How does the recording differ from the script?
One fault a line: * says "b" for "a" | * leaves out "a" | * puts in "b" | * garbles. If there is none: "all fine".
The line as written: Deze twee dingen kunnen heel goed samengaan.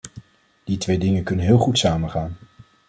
* says "Die" for "Deze"